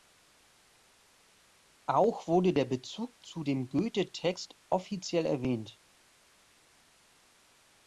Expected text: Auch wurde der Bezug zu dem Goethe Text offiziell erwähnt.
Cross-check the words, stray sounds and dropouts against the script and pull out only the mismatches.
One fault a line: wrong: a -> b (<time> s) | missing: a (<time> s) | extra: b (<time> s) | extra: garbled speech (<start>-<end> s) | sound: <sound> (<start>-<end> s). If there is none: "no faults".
no faults